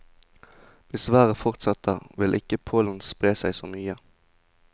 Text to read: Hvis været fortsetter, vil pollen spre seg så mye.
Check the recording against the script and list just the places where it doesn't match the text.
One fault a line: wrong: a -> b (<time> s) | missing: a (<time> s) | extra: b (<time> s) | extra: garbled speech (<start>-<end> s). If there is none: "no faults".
extra: ikke (2.3 s)